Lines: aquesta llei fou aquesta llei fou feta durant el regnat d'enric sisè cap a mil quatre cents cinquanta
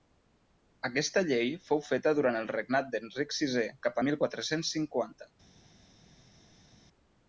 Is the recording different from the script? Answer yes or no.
yes